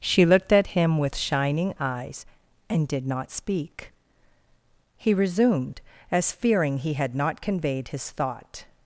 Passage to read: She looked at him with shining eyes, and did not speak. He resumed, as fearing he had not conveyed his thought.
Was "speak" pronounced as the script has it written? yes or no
yes